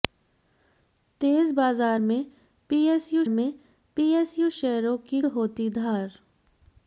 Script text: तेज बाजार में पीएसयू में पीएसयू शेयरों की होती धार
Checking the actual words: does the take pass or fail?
pass